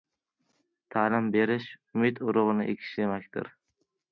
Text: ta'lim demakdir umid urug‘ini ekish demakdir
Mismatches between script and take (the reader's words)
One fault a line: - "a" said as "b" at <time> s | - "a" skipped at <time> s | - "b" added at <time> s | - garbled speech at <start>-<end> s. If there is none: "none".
- "demakdir" said as "berish" at 1.4 s